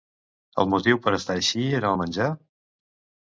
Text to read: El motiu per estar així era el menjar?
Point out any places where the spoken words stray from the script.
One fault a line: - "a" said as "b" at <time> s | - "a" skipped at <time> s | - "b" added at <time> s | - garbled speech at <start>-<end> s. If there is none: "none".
none